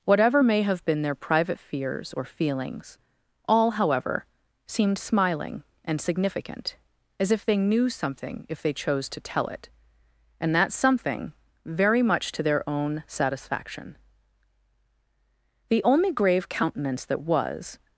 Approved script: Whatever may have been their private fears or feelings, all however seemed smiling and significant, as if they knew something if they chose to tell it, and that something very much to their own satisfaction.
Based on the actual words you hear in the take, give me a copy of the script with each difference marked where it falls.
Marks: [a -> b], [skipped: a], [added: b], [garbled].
Whatever may have been their private fears or feelings, all however seemed smiling and significant, as if they knew something if they chose to tell it, and that something very much to their own satisfaction. [added: The only grave countenance that was]